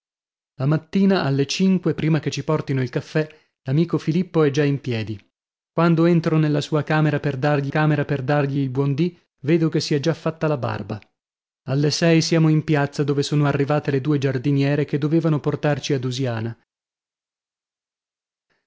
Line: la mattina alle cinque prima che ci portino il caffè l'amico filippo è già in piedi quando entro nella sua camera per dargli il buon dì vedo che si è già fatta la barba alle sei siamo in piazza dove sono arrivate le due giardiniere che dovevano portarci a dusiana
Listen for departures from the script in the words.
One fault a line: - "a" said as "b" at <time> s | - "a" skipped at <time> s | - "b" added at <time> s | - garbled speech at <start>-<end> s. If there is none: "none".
- "camera per dargli" added at 7.7 s